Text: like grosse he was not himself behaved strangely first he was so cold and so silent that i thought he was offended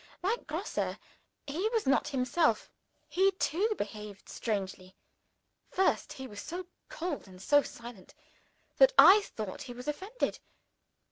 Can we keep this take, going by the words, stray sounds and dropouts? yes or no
no